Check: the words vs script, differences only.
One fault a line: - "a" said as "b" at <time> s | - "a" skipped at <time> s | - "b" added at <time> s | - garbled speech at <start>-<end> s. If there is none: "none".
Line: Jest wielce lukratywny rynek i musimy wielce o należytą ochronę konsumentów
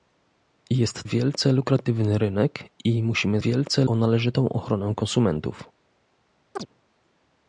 none